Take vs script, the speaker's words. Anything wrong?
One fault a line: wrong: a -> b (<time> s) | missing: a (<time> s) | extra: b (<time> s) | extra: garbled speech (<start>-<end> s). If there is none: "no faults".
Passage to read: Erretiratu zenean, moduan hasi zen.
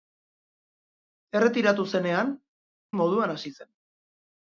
no faults